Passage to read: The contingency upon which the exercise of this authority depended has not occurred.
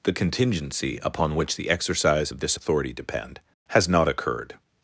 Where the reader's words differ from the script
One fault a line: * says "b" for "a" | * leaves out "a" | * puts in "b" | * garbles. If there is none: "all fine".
* says "depend" for "depended"